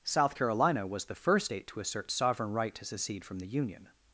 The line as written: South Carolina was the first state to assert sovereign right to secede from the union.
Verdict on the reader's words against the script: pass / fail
pass